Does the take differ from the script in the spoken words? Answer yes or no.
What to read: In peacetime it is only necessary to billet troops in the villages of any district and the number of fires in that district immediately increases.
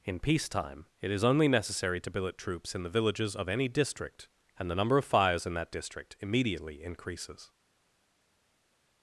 no